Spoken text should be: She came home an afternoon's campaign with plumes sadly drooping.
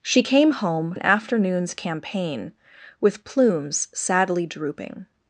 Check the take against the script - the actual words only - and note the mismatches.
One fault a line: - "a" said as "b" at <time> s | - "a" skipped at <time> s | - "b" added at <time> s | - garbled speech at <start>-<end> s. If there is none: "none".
none